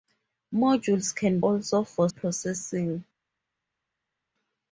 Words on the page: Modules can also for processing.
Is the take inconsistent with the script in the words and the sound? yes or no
no